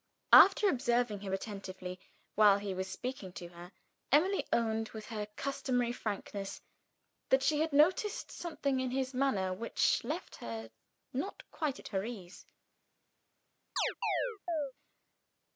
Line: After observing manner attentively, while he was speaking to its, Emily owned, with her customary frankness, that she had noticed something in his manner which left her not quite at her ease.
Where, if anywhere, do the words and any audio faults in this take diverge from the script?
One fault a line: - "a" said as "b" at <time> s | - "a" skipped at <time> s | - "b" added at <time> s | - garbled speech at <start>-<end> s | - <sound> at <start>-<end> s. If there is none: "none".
- "manner" said as "him" at 1.2 s
- "its" said as "her" at 3.5 s
- chirp at 13.8-14.7 s